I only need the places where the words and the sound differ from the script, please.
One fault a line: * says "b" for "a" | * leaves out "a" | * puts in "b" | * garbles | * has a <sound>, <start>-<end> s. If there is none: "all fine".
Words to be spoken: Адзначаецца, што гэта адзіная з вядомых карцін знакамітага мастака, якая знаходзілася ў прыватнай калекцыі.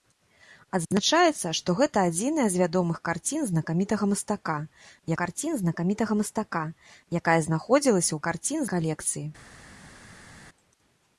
* puts in "карцін знакамітага мастака"
* says "карцін" for "прыватнай"